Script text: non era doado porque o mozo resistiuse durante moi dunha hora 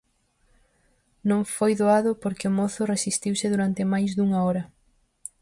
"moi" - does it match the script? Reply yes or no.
no